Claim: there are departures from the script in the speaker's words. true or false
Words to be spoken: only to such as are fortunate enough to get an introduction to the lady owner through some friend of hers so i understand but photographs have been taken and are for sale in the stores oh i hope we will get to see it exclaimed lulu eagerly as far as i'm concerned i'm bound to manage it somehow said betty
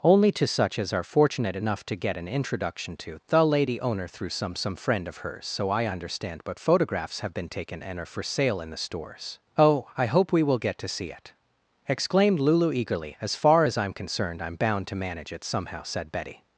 true